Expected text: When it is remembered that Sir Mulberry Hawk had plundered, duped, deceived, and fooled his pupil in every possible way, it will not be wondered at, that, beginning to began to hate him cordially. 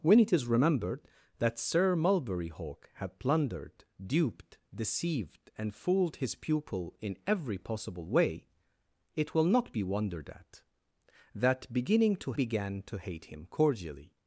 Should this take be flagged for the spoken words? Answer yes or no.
no